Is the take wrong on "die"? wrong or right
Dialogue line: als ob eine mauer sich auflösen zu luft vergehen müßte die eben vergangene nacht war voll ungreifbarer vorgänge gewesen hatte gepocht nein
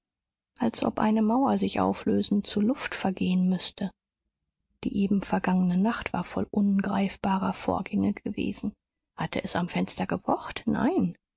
right